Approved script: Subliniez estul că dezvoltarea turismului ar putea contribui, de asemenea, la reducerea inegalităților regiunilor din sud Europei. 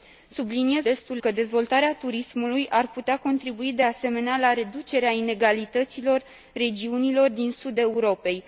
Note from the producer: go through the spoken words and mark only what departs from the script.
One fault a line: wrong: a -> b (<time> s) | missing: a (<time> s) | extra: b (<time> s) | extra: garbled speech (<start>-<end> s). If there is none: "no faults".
no faults